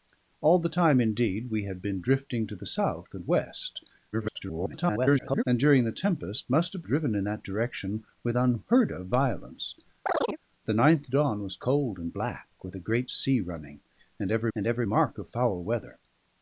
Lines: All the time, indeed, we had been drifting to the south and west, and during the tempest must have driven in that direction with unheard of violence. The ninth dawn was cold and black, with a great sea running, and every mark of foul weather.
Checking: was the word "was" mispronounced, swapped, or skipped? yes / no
no